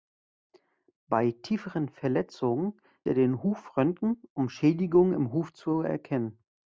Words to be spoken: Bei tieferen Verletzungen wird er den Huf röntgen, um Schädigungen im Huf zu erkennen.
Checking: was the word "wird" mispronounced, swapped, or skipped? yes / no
yes